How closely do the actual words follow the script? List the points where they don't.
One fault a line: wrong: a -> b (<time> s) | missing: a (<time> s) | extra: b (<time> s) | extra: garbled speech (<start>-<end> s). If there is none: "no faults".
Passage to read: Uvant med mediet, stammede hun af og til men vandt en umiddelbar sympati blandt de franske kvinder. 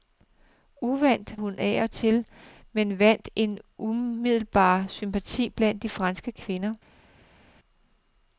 missing: med mediet stammede (1.4 s)